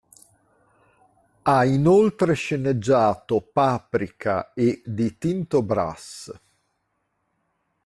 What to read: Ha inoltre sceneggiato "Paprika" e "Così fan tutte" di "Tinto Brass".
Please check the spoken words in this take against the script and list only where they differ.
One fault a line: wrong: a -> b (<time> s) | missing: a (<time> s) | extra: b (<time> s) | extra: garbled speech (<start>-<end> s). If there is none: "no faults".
missing: Così fan tutte (4.8 s)